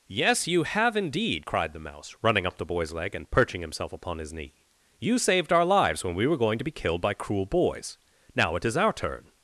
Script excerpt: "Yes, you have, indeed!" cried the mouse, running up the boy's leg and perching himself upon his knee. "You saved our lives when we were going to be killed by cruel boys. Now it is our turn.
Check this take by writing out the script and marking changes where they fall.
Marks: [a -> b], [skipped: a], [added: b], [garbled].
"Yes, you have, indeed!" cried the mouse, running up the boy's leg and perching himself upon his knee. "You saved our lives when we were going to be killed by cruel boys. Now it is our turn.